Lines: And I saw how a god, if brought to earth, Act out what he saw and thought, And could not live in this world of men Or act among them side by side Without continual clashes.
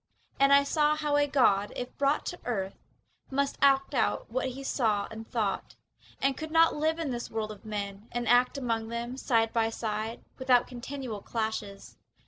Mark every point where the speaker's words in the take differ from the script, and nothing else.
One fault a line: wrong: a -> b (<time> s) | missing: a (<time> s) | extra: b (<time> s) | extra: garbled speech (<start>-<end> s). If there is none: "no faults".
extra: Must (3.3 s)
wrong: Or -> And (8.1 s)